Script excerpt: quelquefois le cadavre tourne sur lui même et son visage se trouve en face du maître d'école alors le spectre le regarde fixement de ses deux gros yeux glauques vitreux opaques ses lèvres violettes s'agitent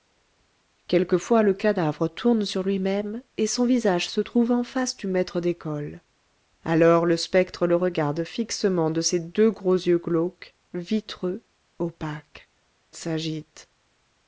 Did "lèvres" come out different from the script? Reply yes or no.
yes